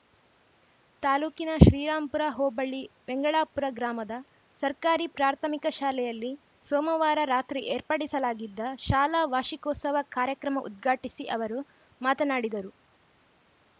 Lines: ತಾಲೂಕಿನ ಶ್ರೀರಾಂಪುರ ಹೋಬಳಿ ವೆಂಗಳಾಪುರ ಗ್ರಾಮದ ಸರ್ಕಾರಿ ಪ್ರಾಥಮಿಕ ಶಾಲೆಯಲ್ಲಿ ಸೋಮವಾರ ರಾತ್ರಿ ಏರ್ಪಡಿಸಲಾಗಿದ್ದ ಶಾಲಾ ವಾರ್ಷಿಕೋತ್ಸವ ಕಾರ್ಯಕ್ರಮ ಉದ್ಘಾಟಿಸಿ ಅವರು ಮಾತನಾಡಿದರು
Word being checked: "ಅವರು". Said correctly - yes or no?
yes